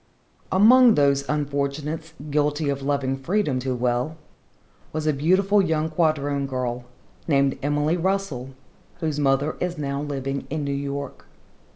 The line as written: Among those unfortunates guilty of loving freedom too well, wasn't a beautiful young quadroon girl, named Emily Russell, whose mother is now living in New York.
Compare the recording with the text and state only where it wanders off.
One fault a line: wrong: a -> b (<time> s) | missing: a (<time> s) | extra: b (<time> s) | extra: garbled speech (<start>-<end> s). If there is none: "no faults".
wrong: wasn't -> was (4.9 s)